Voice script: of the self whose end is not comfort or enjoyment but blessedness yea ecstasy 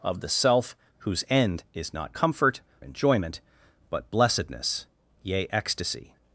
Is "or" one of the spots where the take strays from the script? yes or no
yes